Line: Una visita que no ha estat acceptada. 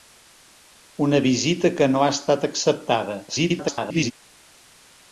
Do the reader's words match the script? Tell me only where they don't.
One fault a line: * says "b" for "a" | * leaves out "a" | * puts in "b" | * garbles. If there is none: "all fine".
* garbles